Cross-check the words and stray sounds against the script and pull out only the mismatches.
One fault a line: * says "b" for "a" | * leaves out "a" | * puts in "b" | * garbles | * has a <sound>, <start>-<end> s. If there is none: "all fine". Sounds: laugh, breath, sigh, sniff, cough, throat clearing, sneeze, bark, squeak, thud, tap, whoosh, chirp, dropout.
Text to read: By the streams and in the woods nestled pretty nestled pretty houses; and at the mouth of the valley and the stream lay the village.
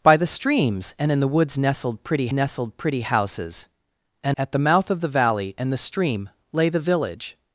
all fine